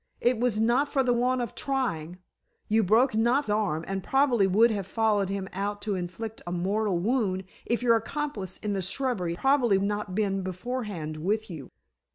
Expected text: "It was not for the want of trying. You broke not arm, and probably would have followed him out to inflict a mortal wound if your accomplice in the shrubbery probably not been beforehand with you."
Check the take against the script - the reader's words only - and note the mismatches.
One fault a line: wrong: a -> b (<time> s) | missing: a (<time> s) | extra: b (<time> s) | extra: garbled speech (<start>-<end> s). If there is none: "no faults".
no faults